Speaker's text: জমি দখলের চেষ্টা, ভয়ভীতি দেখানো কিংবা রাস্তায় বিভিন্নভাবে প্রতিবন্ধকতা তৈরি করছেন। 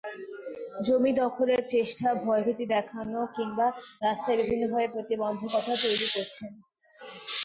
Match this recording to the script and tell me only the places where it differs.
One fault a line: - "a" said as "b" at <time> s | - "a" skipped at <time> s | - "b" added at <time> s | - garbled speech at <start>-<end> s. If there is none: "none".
none